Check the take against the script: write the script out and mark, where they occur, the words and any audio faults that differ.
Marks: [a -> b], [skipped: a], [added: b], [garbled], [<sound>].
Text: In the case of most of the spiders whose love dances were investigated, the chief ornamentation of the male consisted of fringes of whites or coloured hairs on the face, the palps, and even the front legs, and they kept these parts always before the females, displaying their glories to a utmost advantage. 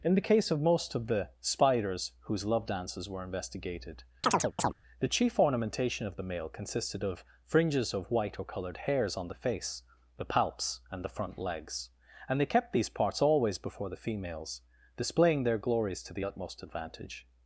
In the case of most of the spiders whose love dances were investigated, [chirp] the chief ornamentation of the male consisted of fringes of [whites -> white] or coloured hairs on the face, the palps, and [skipped: even] the front legs, and they kept these parts always before the females, displaying their glories to [a -> the] utmost advantage.